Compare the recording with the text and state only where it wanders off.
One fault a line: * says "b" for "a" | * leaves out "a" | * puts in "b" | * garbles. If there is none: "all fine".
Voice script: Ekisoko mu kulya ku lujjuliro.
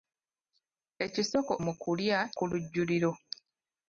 all fine